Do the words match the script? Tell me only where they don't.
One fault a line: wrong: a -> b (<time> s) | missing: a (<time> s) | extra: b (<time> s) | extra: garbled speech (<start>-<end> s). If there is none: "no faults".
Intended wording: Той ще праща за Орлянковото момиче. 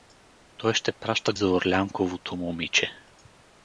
no faults